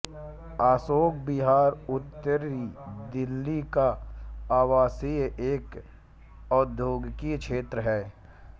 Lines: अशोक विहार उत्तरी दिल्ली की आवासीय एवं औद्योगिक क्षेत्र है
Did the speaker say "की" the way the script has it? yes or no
no